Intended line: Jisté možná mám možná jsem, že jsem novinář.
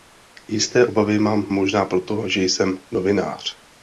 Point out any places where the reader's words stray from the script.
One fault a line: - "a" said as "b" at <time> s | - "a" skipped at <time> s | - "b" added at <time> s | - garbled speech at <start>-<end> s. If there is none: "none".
- "možná" said as "obavy" at 0.8 s
- "jsem" said as "proto" at 1.8 s